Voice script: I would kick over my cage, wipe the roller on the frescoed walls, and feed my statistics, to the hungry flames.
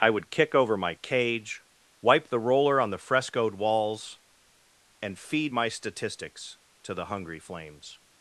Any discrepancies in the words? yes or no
no